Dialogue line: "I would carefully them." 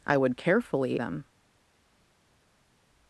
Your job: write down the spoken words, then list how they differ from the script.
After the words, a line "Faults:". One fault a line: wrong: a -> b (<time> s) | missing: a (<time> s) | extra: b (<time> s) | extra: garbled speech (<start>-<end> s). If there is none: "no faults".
"I would carefully them."
Faults:
no faults